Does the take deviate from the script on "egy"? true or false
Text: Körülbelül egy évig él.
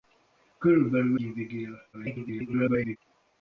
true